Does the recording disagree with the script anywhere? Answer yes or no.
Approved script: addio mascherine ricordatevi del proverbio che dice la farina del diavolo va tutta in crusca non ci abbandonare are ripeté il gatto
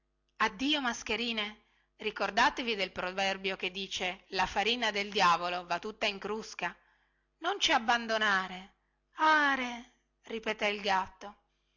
no